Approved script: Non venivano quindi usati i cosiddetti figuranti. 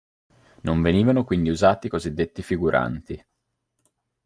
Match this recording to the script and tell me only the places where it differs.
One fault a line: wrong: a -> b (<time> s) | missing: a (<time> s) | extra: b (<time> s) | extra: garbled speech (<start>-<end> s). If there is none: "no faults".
no faults